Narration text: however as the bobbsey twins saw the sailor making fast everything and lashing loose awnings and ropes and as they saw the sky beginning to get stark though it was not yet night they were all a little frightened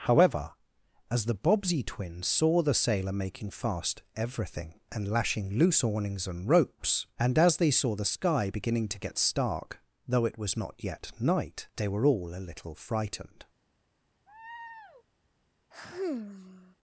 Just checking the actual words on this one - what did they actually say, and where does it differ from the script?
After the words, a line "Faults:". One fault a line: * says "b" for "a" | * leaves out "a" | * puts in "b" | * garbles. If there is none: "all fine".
however as the bobbsey twins saw the sailor making fast everything and lashing loose awnings and ropes and as they saw the sky beginning to get stark though it was not yet night they were all a little frightened
Faults:
all fine